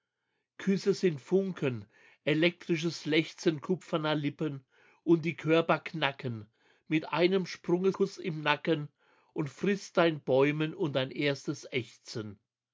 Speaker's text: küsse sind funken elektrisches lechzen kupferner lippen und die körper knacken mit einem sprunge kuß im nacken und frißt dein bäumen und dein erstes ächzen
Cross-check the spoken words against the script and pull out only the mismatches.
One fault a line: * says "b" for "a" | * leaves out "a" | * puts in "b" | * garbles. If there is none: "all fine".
all fine